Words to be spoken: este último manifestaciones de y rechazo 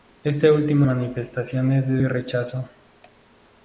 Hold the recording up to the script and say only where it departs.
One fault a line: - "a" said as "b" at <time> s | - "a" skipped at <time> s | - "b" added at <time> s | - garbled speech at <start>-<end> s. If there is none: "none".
none